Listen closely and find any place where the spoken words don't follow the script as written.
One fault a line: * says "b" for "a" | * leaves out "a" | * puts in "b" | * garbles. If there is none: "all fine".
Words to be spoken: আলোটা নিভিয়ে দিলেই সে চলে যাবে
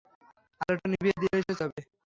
* leaves out "চলে"